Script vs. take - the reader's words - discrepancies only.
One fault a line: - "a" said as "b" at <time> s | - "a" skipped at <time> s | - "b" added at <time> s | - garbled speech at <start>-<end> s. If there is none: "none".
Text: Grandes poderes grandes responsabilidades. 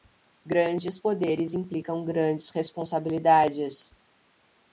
- "implicam" added at 1.5 s